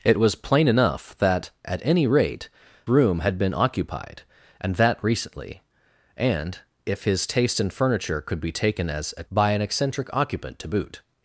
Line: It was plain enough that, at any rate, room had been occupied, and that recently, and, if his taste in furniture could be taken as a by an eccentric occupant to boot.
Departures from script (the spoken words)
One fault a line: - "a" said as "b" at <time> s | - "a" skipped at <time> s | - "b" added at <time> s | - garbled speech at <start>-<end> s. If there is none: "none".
none